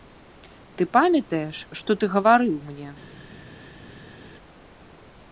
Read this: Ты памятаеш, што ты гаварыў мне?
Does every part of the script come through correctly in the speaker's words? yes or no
yes